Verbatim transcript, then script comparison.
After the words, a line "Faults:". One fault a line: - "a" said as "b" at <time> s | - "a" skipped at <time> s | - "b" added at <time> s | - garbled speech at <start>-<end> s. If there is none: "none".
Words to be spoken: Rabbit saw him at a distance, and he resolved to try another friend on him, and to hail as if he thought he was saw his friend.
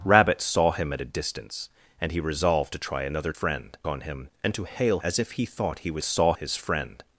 Rabbit saw him at a distance, and he resolved to try another friend on him, and to hail as if he thought he was saw his friend.
Faults:
none